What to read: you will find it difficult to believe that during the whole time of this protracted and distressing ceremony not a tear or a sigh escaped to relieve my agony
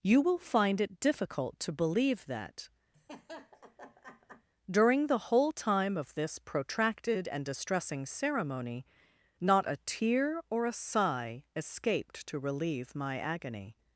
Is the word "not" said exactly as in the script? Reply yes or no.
yes